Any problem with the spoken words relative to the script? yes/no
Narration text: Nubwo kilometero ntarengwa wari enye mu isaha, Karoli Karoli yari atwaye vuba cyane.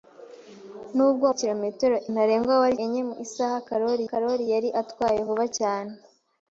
no